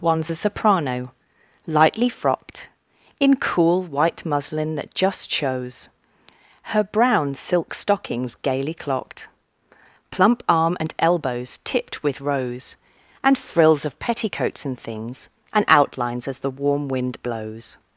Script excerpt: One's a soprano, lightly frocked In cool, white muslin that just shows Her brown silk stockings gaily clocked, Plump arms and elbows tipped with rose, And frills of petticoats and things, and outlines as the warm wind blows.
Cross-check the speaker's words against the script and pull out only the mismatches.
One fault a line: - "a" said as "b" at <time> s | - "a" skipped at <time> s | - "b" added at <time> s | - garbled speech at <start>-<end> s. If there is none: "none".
- "arms" said as "arm" at 10.5 s